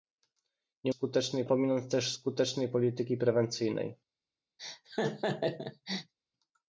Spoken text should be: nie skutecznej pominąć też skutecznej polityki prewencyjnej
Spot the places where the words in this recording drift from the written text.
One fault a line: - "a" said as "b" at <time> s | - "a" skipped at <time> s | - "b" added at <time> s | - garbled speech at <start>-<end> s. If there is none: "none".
none